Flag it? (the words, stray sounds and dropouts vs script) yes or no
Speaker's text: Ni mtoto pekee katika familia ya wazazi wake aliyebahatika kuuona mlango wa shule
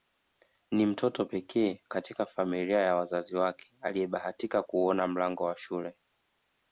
no